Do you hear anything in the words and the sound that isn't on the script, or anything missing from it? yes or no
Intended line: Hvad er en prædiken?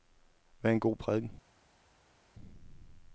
yes